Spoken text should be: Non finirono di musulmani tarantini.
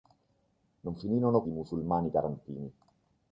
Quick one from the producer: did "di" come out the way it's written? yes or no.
yes